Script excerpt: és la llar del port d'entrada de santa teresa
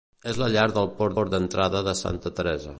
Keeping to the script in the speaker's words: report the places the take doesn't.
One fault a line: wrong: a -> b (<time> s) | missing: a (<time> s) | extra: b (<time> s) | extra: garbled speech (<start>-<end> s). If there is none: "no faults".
extra: port (1.2 s)